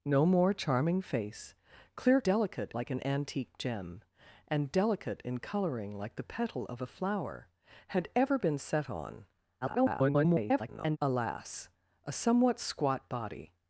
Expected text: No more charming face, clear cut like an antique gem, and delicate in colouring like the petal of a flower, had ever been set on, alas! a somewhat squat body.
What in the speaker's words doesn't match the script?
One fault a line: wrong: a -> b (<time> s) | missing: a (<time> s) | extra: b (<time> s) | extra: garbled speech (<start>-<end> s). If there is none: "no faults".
wrong: cut -> delicate (2.2 s)
extra: garbled speech (9.6-11.0 s)